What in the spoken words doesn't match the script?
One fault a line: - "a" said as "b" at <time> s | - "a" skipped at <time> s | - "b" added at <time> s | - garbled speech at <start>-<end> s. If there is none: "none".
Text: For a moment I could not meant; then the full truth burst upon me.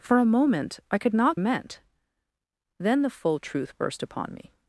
none